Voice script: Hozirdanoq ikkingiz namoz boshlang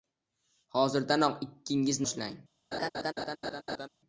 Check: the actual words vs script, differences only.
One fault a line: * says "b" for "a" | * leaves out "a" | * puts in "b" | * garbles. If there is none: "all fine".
* leaves out "namoz"